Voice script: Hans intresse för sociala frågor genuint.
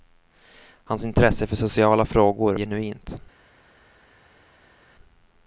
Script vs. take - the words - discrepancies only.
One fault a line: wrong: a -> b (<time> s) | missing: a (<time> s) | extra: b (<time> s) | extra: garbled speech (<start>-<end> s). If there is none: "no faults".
no faults